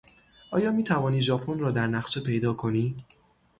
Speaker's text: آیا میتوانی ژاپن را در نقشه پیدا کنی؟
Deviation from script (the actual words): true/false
false